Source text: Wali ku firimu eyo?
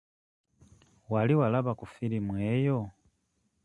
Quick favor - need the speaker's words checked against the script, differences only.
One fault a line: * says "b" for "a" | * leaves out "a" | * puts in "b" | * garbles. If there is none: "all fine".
* puts in "walaba"